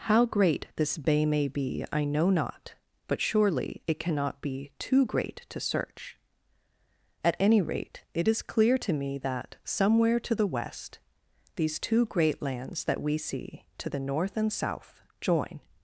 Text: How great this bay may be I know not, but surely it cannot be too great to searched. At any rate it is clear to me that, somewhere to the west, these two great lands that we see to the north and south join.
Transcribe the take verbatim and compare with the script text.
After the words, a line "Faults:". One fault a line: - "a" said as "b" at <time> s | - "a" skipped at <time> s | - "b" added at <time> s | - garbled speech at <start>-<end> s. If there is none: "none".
How great this bay may be I know not, but surely it cannot be too great to search. At any rate it is clear to me that, somewhere to the west, these two great lands that we see to the north and south join.
Faults:
- "searched" said as "search" at 5.6 s